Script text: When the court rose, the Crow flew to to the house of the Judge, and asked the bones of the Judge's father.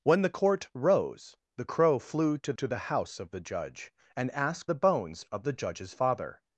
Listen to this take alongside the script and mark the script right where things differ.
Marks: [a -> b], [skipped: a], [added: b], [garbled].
When the court rose, the Crow flew to to the house of the Judge, and asked the bones of the Judge's father.